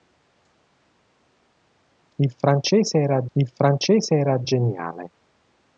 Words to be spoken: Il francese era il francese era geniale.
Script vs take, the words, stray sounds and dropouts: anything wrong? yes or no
no